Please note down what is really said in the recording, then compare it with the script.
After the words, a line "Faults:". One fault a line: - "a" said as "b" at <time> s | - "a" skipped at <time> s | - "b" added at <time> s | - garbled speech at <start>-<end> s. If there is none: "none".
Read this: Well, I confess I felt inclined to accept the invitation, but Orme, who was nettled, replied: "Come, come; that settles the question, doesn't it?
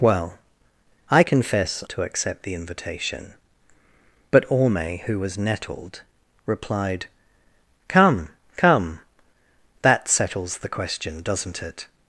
Well, I confess to accept the invitation, but Orme, who was nettled, replied: "Come, come; that settles the question, doesn't it?
Faults:
- "I felt inclined" skipped at 1.8 s